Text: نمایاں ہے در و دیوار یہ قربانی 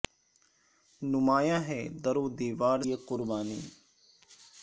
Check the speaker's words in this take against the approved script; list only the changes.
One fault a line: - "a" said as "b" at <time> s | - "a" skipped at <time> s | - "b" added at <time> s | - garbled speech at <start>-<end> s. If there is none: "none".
none